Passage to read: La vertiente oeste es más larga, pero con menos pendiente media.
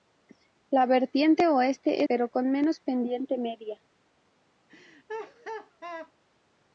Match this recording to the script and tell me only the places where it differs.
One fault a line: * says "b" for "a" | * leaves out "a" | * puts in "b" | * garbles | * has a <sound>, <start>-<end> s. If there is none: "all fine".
* leaves out "es más larga"
* has a laugh, 4.7-6.1 s